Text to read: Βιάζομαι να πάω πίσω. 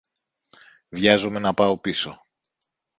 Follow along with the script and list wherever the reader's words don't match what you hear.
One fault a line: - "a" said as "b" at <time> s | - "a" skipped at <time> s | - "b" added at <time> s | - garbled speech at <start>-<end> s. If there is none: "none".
none